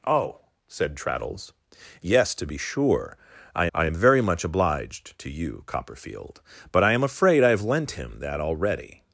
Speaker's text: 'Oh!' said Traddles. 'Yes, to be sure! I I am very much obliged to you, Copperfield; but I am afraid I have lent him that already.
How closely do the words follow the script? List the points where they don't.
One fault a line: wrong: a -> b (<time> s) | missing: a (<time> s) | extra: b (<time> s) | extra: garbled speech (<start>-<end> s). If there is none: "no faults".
no faults